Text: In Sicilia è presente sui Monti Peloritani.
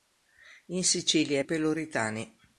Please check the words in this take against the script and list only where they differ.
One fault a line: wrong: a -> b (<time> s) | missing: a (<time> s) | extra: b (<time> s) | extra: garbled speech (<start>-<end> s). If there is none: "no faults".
missing: presente sui Monti (1.4 s)